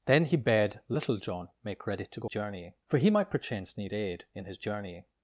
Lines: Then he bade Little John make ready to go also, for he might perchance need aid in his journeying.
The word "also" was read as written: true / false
false